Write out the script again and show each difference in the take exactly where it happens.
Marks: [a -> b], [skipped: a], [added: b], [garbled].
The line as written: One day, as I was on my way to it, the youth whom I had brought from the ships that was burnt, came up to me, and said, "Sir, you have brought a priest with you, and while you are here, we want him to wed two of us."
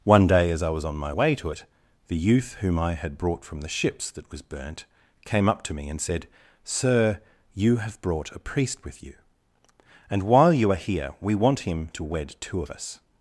One day, as I was on my way to it, the youth whom I had brought from the ships that was burnt, came up to me, and said, "Sir, you have brought a priest with you, and while you are here, we want him to wed two of us."